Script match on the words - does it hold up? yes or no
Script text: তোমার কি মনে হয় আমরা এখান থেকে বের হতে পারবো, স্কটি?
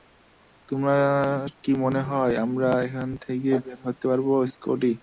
yes